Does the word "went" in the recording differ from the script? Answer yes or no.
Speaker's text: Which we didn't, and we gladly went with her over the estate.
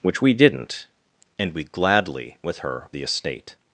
yes